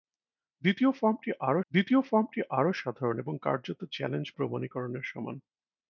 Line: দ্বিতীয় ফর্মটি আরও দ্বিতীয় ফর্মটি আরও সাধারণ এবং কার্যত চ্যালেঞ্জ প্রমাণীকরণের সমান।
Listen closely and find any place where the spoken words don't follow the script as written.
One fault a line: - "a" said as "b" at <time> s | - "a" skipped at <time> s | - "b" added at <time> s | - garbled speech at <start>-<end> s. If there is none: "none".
none